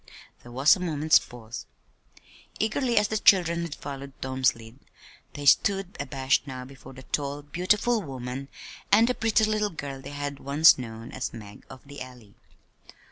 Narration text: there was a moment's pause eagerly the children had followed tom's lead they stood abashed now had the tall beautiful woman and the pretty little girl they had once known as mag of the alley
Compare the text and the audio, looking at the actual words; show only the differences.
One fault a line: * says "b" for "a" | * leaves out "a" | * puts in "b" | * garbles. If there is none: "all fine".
* puts in "as"
* says "before" for "had"